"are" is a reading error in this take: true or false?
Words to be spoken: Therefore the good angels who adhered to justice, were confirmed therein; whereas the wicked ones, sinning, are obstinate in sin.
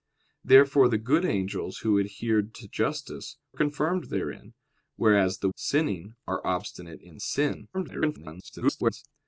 false